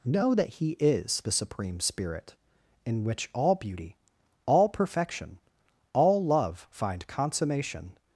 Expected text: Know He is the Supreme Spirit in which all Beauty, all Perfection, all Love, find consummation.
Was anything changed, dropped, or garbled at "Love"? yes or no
no